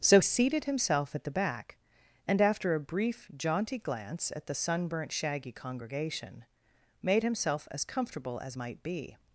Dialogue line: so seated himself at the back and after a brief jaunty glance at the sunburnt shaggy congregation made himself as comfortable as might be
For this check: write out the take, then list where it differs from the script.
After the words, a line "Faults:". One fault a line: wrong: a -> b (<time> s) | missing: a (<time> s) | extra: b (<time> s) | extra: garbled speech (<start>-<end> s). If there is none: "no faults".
so seated himself at the back and after a brief jaunty glance at the sunburnt shaggy congregation made himself as comfortable as might be
Faults:
no faults